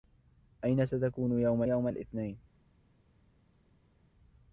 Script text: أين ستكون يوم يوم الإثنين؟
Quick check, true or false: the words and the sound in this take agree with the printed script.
true